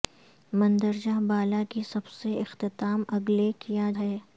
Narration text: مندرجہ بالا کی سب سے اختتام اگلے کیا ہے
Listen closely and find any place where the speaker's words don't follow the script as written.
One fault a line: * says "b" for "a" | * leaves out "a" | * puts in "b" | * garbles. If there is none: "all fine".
all fine